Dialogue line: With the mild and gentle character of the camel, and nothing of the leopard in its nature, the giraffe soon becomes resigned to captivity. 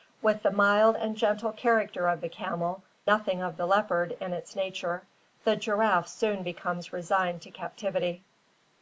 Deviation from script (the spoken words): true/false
true